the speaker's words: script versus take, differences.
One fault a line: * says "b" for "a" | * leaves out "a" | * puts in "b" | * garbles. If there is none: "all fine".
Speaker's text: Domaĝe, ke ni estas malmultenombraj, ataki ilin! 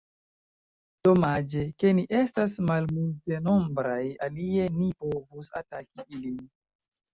* puts in "alie ni povus"